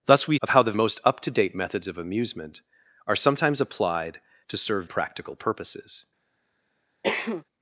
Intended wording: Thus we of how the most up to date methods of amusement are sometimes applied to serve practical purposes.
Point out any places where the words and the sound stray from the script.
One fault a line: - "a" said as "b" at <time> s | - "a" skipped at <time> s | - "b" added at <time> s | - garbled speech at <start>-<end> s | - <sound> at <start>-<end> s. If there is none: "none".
- cough at 7.0-7.4 s